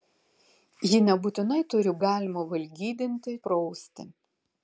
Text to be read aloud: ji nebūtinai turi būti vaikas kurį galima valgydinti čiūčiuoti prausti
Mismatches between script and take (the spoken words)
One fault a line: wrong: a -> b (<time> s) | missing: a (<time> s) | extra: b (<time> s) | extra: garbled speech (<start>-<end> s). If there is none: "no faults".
missing: būti vaikas kurį (1.9 s)
missing: čiūčiuoti (3.4 s)